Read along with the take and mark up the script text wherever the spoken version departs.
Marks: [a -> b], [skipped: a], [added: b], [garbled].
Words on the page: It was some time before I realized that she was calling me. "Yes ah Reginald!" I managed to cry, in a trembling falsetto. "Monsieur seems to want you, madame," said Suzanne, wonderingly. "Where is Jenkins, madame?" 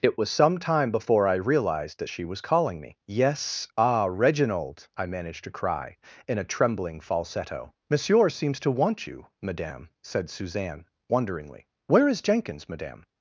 It was some time before I realized that she was calling me. "Yes ah Reginald!" I managed to cry, in a trembling falsetto. "Monsieur seems to want you, madame," said Suzanne, wonderingly. "Where is Jenkins, madame?"